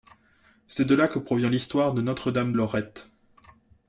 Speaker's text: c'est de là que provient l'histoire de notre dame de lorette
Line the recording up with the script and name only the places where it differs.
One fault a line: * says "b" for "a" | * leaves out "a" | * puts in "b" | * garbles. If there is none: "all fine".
* leaves out "de"